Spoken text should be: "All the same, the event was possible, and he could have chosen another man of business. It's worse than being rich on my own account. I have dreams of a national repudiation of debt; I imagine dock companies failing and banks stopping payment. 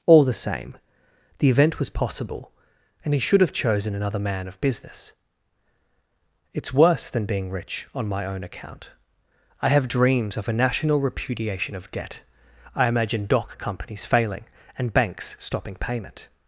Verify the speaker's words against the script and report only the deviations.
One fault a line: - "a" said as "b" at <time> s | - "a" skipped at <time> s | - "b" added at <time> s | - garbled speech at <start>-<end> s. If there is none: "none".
- "could" said as "should" at 3.2 s